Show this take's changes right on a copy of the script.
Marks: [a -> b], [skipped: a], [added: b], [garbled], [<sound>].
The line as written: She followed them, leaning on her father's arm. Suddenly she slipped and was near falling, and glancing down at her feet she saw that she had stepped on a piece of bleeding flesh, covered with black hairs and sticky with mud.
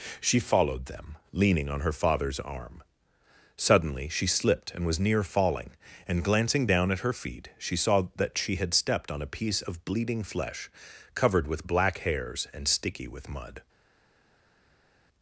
She followed them, leaning on her father's arm. Suddenly she slipped and was near falling, and glancing down at her feet she saw that she had stepped on a piece of bleeding flesh, covered with black hairs and sticky with mud.